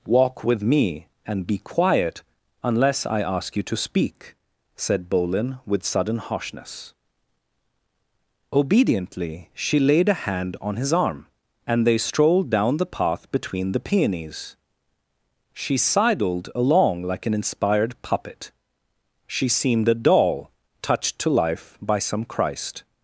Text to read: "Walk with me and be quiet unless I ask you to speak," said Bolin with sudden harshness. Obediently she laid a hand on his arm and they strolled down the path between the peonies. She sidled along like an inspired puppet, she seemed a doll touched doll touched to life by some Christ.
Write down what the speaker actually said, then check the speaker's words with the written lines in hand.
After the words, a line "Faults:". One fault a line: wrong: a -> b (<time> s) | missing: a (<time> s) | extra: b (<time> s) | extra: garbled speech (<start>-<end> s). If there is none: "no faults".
"Walk with me and be quiet unless I ask you to speak," said Bolin with sudden harshness. Obediently she laid a hand on his arm and they strolled down the path between the peonies. She sidled along like an inspired puppet, she seemed a doll touched to life by some Christ.
Faults:
missing: doll touched (21.2 s)